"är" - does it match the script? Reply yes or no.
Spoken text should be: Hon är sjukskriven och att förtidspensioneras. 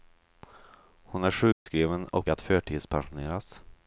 yes